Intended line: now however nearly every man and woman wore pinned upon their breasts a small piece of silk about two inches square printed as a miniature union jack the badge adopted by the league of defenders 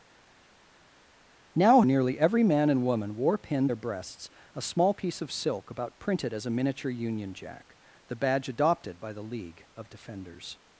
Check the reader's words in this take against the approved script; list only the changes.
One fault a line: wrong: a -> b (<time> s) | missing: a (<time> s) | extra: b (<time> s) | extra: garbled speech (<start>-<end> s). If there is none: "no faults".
missing: however (1.8 s)
missing: upon (3.7 s)
missing: two inches square (6.0 s)